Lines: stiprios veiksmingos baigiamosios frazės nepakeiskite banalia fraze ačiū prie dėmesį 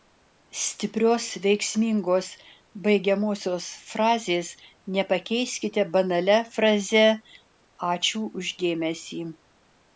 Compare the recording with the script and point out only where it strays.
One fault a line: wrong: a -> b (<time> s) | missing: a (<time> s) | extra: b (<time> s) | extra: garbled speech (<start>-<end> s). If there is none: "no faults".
wrong: prie -> už (8.4 s)